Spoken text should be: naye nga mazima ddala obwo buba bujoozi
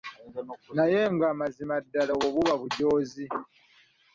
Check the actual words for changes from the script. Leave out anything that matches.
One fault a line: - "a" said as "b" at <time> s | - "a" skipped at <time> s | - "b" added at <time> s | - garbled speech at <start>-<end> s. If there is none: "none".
none